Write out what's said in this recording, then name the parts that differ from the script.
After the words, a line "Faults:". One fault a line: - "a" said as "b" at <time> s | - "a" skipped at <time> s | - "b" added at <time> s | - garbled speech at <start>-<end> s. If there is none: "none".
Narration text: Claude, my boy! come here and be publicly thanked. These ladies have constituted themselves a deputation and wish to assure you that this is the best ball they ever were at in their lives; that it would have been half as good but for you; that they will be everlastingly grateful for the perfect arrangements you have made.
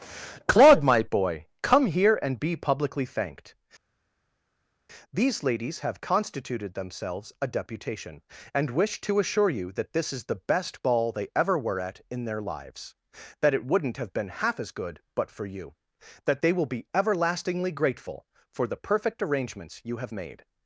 Claude, my boy! come here and be publicly thanked. These ladies have constituted themselves a deputation and wish to assure you that this is the best ball they ever were at in their lives; that it wouldn't have been half as good but for you; that they will be everlastingly grateful for the perfect arrangements you have made.
Faults:
- "would" said as "wouldn't" at 13.6 s